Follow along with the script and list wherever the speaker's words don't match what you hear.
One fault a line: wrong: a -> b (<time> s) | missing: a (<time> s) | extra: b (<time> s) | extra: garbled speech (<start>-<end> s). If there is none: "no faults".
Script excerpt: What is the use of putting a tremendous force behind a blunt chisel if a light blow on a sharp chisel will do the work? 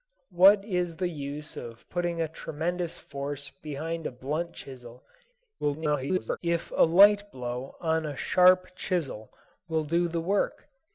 extra: garbled speech (5.6-6.4 s)